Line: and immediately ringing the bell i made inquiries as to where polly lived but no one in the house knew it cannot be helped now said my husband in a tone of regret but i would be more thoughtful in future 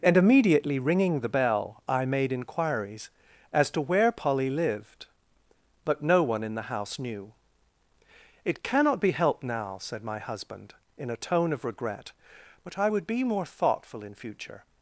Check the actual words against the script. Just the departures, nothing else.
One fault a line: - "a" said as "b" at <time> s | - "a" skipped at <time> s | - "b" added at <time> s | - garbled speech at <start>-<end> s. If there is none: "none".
none